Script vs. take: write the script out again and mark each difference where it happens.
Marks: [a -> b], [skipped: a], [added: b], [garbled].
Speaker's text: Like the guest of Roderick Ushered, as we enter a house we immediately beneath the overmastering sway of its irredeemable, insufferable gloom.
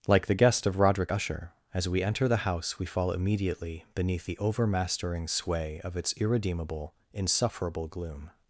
Like the guest of Roderick [Ushered, -> Usher] as we enter [a -> the] house we [added: fall] immediately beneath the overmastering sway of its irredeemable, insufferable gloom.